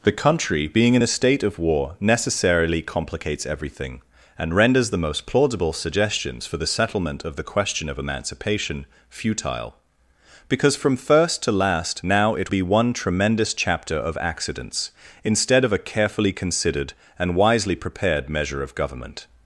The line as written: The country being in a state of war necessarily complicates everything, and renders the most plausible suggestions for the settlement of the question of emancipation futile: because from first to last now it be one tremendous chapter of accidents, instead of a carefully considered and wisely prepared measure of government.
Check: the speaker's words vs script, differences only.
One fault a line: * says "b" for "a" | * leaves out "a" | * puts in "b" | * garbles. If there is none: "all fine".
all fine